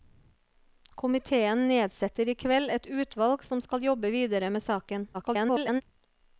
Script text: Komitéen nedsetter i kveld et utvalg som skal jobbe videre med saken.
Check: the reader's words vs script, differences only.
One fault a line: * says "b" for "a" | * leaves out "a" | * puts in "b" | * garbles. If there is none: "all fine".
* garbles